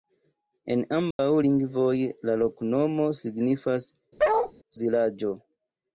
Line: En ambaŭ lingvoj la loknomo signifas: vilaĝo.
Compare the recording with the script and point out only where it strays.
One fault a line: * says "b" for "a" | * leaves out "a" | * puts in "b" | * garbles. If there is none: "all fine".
all fine